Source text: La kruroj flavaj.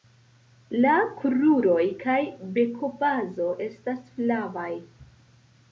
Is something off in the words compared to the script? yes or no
yes